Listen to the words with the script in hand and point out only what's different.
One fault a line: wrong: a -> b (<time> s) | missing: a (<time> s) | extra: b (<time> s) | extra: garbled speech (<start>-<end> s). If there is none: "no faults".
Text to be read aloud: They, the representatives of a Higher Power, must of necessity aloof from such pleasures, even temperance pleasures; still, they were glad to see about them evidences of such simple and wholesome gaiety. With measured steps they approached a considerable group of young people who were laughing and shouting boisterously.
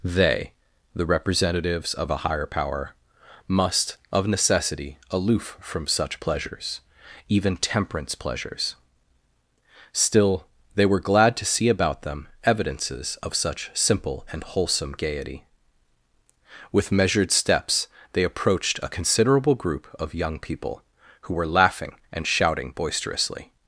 no faults